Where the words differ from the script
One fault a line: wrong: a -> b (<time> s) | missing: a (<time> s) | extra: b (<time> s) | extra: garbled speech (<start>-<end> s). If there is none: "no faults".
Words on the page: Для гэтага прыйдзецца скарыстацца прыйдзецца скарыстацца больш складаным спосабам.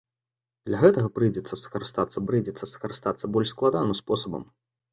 no faults